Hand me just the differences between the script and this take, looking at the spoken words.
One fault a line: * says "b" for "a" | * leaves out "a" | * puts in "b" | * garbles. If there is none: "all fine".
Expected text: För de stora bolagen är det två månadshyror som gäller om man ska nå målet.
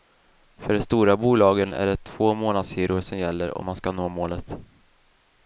all fine